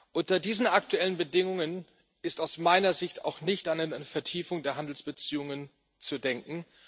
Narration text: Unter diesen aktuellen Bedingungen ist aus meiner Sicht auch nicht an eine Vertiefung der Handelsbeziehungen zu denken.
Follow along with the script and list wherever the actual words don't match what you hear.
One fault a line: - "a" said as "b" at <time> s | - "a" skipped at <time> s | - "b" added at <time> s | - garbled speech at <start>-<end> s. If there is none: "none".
none